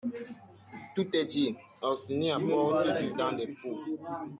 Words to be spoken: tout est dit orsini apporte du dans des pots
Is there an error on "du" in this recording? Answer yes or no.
no